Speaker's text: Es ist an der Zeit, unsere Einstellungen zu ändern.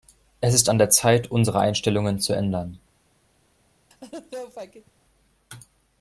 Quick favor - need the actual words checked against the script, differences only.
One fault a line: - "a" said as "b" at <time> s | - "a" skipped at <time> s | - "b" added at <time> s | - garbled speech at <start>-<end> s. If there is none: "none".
none